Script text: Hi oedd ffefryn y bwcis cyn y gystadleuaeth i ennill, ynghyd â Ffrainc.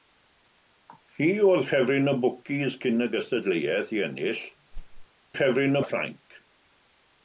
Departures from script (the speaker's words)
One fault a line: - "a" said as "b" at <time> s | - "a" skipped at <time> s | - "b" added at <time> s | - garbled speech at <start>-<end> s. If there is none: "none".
- "ynghyd" said as "ffefryn" at 5.3 s